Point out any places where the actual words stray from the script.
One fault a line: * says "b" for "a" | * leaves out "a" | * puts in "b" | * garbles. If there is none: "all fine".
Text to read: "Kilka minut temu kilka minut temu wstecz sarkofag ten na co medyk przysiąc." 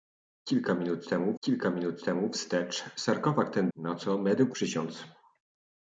all fine